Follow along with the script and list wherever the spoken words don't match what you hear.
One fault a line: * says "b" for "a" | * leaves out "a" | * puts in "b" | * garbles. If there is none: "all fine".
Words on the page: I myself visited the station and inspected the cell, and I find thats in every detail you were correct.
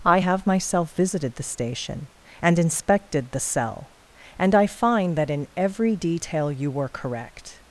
* puts in "have"
* says "that" for "thats"